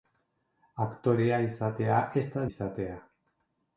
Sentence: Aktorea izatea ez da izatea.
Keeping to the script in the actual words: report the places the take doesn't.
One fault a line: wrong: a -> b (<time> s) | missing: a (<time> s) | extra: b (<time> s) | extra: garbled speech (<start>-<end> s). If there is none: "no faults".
no faults